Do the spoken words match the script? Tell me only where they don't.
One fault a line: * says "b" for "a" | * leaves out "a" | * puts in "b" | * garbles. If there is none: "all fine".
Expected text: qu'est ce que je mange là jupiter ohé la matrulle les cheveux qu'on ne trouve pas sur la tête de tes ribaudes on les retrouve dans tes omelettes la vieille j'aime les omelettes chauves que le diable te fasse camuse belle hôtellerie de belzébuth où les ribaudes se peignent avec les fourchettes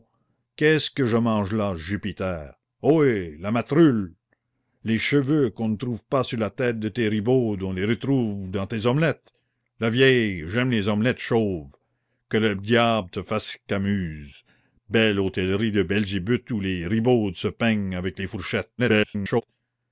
* garbles